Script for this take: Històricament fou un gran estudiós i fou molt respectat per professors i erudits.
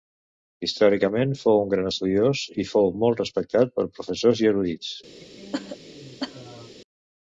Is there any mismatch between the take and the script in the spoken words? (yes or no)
no